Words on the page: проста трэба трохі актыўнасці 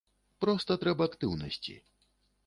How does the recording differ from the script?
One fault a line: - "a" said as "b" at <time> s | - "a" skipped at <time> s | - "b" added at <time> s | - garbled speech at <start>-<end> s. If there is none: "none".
- "трохі" skipped at 1.1 s